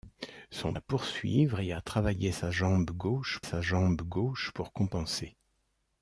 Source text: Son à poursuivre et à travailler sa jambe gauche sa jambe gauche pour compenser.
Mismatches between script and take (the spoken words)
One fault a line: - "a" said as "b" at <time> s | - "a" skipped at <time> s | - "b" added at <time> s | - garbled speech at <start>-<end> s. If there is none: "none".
none